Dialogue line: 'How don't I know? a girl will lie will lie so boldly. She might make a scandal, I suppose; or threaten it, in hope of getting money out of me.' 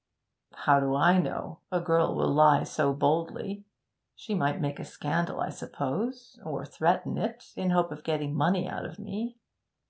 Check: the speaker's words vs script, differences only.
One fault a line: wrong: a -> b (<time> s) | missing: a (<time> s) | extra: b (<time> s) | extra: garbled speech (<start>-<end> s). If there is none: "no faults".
wrong: don't -> do (0.8 s)
missing: will lie (2.6 s)